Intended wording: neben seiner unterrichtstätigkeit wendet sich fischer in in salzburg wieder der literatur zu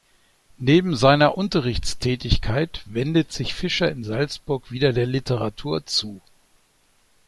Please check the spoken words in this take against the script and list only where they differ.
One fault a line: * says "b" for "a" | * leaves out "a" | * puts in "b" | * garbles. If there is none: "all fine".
* leaves out "in"